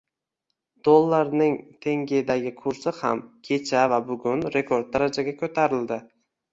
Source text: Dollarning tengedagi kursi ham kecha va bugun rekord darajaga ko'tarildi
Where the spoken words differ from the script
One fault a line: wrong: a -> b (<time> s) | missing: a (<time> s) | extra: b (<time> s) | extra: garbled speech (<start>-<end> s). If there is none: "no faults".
no faults